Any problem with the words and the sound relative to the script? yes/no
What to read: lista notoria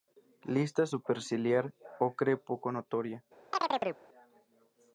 yes